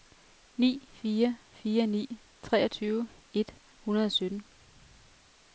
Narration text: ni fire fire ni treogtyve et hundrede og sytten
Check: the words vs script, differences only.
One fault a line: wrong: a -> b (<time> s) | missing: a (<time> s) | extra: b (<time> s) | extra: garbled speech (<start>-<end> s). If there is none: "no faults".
no faults